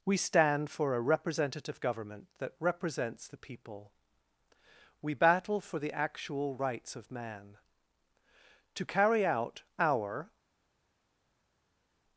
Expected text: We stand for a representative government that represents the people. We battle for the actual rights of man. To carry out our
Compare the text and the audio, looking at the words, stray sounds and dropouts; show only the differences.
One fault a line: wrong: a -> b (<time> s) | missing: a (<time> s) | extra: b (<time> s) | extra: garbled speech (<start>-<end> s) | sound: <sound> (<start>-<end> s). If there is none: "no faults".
no faults